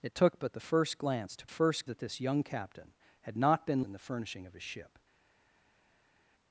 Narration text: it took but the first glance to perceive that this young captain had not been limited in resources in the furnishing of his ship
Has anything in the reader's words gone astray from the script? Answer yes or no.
yes